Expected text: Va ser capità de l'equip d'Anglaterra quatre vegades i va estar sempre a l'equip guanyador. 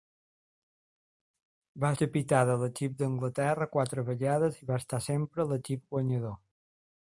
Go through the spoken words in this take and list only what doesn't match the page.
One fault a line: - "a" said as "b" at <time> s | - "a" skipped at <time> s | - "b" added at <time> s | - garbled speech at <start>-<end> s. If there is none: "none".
- "ser" skipped at 1.9 s